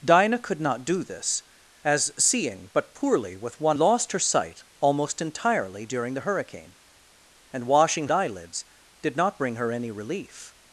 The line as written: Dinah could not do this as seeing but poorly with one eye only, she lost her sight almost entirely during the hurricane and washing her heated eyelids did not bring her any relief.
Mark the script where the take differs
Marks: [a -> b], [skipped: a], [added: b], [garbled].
Dinah could not do this as seeing but poorly with one [skipped: eye only, she] lost her sight almost entirely during the hurricane and washing [skipped: her heated] eyelids did not bring her any relief.